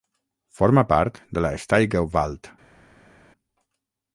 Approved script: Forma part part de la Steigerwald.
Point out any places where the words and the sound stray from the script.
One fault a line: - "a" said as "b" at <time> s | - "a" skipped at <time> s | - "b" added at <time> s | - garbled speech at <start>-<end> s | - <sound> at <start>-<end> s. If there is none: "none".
- "part" skipped at 1.2 s